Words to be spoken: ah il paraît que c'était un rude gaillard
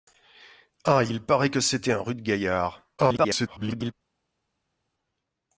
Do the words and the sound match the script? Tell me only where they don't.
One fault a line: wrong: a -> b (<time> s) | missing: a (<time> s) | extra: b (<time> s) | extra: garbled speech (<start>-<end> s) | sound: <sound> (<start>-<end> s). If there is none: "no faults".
extra: garbled speech (3.0-3.9 s)